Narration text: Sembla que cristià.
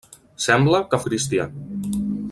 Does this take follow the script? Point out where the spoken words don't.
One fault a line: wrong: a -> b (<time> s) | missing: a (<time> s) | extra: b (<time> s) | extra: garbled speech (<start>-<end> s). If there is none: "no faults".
no faults